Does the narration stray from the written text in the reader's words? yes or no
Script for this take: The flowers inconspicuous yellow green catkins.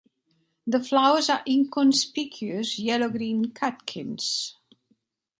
yes